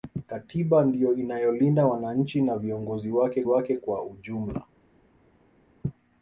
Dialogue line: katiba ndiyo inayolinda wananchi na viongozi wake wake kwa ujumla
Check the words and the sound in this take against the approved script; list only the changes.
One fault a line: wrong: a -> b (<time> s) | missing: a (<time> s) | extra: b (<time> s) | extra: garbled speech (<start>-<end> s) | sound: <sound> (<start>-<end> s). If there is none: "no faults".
no faults